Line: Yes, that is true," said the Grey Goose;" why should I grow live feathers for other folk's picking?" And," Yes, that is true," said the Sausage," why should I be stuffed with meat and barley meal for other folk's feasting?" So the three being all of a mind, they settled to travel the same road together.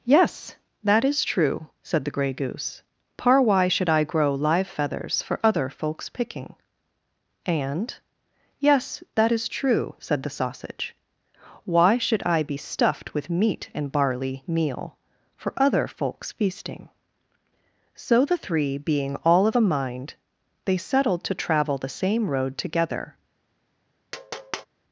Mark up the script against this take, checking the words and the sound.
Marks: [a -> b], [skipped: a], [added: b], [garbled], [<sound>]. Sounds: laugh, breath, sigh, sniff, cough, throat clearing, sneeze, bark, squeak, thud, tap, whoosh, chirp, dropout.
Yes, that is true," said the Grey Goose;" [added: par] why should I grow live feathers for other folk's picking?" And," Yes, that is true," said the Sausage," why should I be stuffed with meat and barley meal for other folk's feasting?" So the three being all of a mind, they settled to travel the same road together. [tap]